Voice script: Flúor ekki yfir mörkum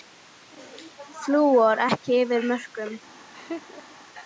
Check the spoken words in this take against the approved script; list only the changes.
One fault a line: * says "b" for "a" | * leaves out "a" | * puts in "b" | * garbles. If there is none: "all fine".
all fine